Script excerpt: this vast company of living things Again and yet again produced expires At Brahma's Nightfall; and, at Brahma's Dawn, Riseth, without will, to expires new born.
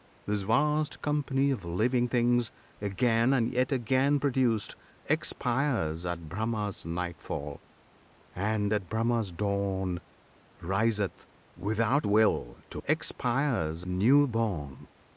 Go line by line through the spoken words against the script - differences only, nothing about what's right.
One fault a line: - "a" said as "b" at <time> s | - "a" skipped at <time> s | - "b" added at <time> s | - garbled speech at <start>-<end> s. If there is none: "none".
none